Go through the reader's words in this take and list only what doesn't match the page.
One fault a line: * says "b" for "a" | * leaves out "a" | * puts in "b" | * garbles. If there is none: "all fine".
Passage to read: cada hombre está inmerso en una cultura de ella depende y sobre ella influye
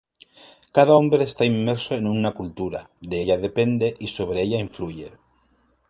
all fine